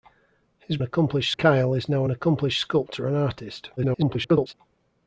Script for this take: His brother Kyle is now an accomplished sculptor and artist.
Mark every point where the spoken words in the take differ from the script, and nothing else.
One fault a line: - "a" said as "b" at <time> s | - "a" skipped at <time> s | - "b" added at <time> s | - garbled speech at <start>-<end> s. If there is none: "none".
- "brother" said as "accomplished" at 0.8 s
- garbled speech at 3.8-4.5 s